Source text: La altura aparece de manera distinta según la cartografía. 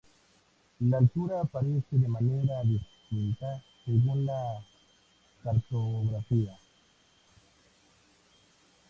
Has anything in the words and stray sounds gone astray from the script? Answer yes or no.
no